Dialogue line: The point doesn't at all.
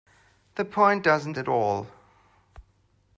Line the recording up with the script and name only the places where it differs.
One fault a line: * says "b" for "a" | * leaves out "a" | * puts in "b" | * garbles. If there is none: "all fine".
all fine